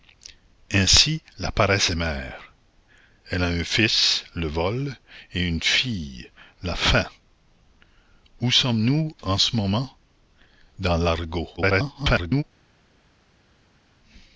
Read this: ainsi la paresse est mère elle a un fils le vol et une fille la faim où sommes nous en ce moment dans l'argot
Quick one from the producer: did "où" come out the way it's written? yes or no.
yes